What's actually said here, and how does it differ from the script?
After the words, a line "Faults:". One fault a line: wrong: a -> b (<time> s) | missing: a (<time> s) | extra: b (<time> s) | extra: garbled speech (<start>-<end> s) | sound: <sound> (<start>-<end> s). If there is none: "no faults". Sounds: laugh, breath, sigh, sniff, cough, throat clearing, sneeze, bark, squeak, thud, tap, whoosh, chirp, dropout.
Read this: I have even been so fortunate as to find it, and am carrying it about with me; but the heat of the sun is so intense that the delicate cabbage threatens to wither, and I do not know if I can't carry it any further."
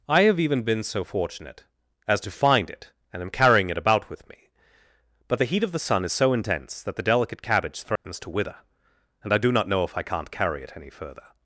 I have even been so fortunate as to find it, and am carrying it about with me; but the heat of the sun is so intense that the delicate cabbage threatens to wither, and I do not know if I can't carry it any further."
Faults:
sound: dropout (8.0-8.0 s)